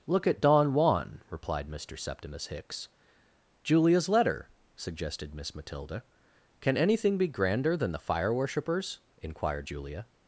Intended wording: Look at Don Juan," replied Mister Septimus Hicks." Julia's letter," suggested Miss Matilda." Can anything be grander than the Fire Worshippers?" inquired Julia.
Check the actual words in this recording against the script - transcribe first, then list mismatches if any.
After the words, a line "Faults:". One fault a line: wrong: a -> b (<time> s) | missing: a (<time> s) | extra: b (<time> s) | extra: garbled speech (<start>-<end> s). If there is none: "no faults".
Look at Don Juan," replied Mister Septimus Hicks." Julia's letter," suggested Miss Matilda." Can anything be grander than the Fire Worshippers?" inquired Julia.
Faults:
no faults